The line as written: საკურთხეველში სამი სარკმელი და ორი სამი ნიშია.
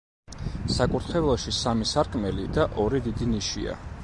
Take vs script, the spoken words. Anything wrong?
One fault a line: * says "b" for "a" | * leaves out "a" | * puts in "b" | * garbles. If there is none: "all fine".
* says "დიდი" for "სამი"